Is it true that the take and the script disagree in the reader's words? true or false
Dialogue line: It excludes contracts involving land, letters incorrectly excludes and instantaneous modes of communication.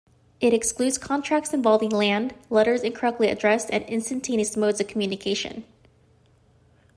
true